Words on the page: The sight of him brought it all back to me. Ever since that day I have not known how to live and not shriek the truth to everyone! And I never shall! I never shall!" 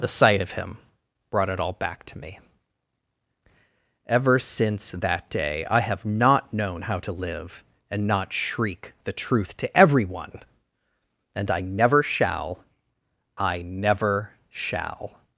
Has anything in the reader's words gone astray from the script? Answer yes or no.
no